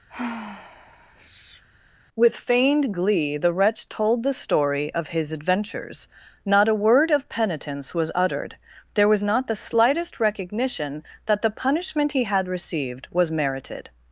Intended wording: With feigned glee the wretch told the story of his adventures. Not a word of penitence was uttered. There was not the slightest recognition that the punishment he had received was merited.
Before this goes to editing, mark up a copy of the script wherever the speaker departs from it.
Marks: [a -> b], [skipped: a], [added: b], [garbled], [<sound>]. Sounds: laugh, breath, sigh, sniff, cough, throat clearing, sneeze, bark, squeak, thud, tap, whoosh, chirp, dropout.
[sigh] With feigned glee the wretch told the story of his adventures. Not a word of penitence was uttered. There was not the slightest recognition that the punishment he had received was merited.